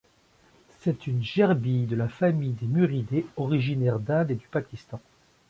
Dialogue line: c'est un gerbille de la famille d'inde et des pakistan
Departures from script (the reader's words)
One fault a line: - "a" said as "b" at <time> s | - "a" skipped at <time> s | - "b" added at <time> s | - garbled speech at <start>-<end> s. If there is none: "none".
- "un" said as "une" at 1.1 s
- "des muridés originaire" added at 2.5 s
- "des" said as "du" at 4.3 s